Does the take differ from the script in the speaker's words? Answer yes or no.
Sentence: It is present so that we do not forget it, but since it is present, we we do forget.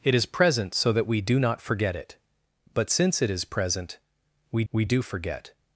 no